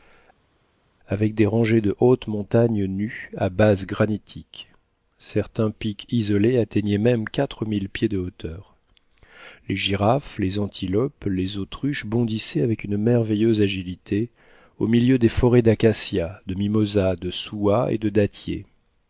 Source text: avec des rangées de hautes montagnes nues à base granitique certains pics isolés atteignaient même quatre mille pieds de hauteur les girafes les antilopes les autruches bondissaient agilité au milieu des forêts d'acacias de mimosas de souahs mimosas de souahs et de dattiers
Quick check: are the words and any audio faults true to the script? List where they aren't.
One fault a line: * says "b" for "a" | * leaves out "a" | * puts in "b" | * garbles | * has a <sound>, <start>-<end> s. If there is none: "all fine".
* puts in "avec une merveilleuse"
* leaves out "mimosas de souahs"